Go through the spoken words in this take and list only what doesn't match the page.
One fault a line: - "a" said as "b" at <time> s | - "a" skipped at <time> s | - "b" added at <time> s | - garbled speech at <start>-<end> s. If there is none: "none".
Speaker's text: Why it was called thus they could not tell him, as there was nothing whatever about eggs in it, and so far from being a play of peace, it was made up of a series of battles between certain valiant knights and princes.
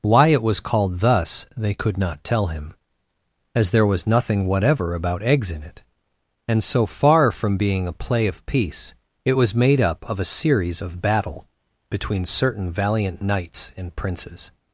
- "battles" said as "battle" at 11.0 s